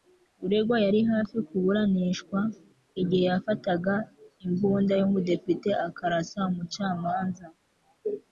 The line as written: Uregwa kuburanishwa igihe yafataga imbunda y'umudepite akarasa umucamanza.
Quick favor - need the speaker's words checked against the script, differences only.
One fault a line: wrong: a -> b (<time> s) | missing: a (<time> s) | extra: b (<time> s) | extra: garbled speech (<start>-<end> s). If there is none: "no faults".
extra: yari hafi (0.8 s)